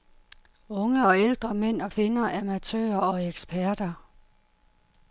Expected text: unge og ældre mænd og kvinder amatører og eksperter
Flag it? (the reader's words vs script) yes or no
no